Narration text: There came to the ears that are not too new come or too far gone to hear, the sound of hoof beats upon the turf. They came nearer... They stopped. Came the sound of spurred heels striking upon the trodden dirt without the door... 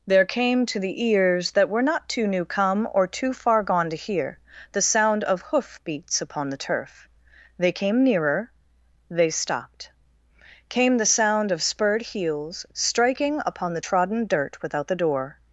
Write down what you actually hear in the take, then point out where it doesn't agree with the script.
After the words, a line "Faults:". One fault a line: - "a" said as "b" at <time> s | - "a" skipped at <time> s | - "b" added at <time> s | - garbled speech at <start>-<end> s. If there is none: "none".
There came to the ears that were not too new come or too far gone to hear, the sound of hoof beats upon the turf. They came nearer... They stopped. Came the sound of spurred heels striking upon the trodden dirt without the door...
Faults:
- "are" said as "were" at 1.7 s